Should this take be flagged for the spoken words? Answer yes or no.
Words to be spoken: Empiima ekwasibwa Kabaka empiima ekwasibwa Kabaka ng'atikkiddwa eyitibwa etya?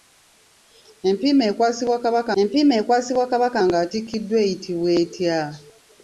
no